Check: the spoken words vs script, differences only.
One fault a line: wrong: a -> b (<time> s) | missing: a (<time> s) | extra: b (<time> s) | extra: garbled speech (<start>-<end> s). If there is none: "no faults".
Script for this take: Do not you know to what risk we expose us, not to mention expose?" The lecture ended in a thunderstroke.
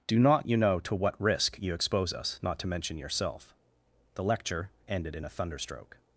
wrong: we -> you (1.6 s)
wrong: expose -> yourself (3.0 s)